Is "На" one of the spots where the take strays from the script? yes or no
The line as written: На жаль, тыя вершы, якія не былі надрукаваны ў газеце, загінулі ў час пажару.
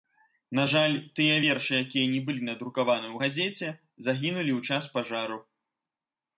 no